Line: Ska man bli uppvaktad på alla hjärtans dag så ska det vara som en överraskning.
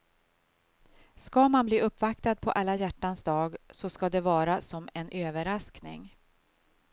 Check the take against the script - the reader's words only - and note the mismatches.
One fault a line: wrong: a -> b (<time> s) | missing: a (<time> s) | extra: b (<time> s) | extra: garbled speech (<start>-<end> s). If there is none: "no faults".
no faults